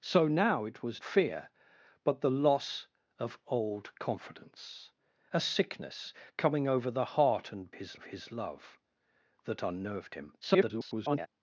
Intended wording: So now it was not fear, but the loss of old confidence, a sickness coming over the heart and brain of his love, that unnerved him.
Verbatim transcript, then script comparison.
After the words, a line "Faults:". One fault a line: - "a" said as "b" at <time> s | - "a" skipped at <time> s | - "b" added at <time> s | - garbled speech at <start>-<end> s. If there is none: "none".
So now it was fear, but the loss of old confidence, a sickness coming over the heart and his of his love, that unnerved him. [garbled]
Faults:
- "not" skipped at 1.0 s
- "brain" said as "his" at 7.7 s
- garbled speech at 10.4-11.3 s